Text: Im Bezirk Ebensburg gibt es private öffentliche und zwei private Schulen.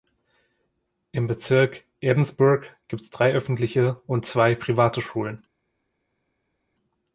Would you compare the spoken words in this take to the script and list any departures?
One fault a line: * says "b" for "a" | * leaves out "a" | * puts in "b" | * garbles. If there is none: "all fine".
* says "drei" for "private"